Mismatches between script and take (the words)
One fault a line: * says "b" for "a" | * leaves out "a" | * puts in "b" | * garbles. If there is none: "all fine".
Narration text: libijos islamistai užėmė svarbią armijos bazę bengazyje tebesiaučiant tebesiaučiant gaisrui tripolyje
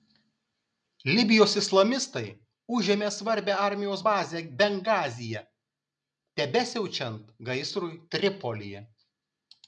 * leaves out "tebesiaučiant"